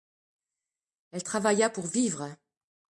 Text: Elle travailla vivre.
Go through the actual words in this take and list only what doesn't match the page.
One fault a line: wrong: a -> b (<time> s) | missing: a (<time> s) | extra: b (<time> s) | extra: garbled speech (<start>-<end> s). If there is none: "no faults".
extra: pour (1.7 s)